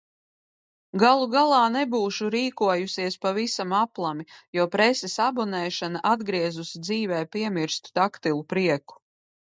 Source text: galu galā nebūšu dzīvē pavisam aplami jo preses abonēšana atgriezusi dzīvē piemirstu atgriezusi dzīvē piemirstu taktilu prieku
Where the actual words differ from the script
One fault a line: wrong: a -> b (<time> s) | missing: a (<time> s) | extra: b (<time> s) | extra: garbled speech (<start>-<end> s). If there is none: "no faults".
wrong: dzīvē -> rīkojusies (2.4 s)
missing: atgriezusi dzīvē piemirstu (8.0 s)